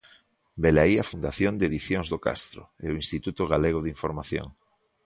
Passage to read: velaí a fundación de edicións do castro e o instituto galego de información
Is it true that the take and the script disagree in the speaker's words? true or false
false